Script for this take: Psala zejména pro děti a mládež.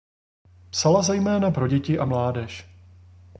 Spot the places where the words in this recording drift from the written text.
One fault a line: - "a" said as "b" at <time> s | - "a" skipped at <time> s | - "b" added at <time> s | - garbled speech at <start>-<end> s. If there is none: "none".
none